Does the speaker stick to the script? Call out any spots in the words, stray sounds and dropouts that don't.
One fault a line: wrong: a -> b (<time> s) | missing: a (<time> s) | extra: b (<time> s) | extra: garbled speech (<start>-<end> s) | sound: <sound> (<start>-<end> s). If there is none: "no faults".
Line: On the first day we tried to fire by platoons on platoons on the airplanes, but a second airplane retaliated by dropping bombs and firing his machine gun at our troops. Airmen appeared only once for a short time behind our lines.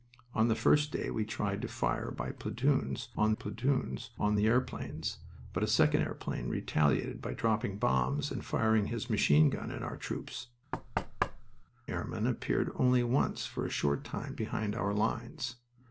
sound: thud (10.7-11.6 s)